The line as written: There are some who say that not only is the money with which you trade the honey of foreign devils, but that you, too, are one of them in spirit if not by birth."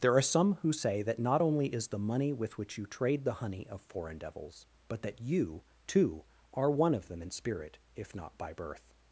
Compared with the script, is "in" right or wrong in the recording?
right